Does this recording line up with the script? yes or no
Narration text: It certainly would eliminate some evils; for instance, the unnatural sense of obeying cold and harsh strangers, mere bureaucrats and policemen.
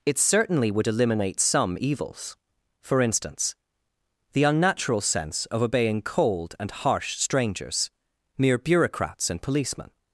yes